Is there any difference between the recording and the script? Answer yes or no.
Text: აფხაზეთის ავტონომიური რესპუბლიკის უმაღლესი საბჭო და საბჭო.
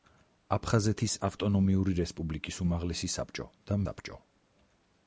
no